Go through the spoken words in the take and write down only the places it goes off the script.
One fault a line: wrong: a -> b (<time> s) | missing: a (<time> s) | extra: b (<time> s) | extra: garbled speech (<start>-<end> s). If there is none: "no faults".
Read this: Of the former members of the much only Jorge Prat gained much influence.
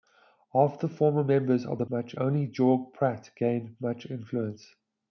no faults